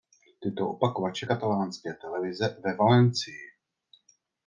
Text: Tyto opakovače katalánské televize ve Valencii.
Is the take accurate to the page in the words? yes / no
yes